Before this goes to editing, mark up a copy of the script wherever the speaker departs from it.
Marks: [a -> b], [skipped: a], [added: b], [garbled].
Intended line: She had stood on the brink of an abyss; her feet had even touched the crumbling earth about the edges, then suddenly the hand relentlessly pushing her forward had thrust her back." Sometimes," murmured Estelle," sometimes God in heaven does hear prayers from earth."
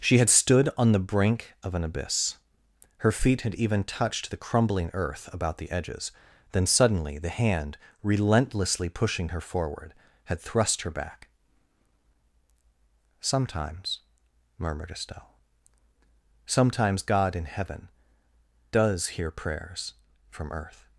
She had stood on the brink of an abyss; her feet had even touched the crumbling earth about the edges, then suddenly the hand relentlessly pushing her forward had thrust her back." Sometimes," murmured Estelle," sometimes God in heaven does hear prayers from earth."